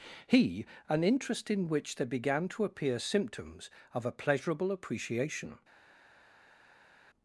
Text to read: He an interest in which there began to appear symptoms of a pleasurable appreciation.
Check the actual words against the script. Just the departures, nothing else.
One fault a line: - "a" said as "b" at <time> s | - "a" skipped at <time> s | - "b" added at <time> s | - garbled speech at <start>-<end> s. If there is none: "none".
none